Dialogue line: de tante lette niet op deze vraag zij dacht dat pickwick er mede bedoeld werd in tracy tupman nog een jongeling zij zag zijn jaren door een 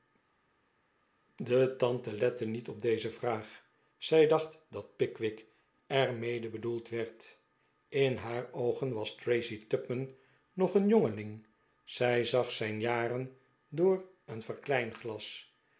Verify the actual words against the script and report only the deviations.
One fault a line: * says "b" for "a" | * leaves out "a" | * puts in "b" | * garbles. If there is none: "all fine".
* puts in "haar oogen was"